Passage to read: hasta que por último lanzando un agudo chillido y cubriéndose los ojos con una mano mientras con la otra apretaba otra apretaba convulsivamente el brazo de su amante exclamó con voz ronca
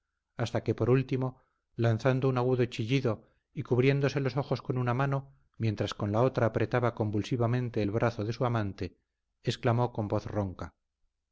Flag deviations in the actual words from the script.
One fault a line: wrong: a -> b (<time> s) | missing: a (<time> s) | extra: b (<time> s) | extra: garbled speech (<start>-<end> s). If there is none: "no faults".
missing: otra apretaba (7.0 s)